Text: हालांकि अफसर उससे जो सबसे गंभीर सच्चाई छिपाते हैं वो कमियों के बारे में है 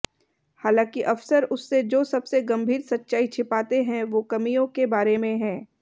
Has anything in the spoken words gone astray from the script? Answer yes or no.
no